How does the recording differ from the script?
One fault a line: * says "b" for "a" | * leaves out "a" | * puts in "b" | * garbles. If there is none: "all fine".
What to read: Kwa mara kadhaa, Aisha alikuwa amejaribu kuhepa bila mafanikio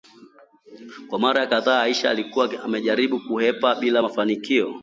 all fine